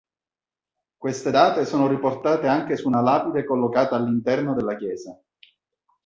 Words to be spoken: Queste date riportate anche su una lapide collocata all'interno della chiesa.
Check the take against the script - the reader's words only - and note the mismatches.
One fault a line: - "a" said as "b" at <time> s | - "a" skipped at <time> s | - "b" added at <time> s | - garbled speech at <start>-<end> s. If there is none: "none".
- "sono" added at 1.7 s